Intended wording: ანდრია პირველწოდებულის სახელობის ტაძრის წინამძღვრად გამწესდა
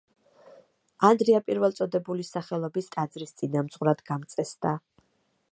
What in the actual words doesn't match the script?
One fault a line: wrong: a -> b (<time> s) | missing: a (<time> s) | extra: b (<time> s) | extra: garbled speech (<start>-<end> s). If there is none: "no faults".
no faults